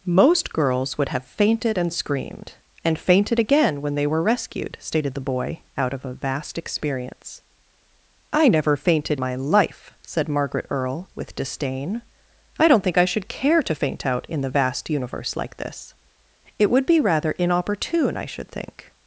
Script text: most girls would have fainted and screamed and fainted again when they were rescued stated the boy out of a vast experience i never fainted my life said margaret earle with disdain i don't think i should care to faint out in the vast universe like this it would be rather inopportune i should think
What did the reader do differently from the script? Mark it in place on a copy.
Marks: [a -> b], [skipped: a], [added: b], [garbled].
most girls would have fainted and screamed and fainted again when they were rescued stated the boy out of a vast experience i never fainted my life said margaret earle with disdain i don't think i should care to faint out in the vast universe like this it would be rather inopportune i should think